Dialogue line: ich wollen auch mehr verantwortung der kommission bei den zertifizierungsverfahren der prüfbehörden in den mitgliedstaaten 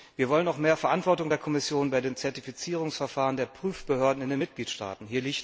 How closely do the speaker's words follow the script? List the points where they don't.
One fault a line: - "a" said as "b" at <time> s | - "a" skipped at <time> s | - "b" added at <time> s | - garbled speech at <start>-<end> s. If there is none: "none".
- "ich" said as "wir" at 0.1 s